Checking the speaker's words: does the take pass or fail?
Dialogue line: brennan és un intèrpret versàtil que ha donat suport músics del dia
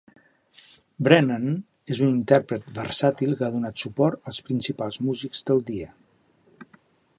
fail